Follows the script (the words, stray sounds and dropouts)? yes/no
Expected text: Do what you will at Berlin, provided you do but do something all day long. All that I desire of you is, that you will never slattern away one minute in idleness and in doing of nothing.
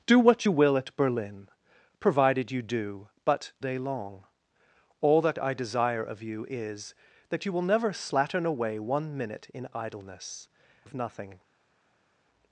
no